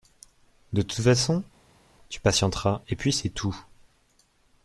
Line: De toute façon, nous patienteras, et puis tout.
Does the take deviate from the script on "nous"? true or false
true